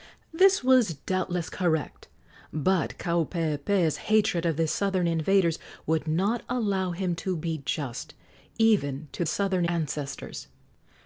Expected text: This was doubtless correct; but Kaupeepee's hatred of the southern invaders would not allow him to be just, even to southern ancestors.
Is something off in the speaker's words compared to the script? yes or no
no